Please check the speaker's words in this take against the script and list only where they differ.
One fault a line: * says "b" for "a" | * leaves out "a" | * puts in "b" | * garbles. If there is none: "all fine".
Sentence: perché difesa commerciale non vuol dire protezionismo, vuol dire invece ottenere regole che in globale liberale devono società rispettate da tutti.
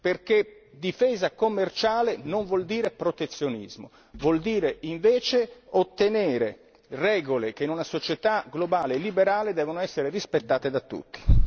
* puts in "una società"
* says "essere" for "società"